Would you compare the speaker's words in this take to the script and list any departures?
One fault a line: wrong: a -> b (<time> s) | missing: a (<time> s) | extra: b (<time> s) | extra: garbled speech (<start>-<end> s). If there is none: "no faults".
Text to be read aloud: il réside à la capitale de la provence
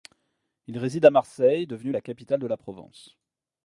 extra: marseille devenue (1.1 s)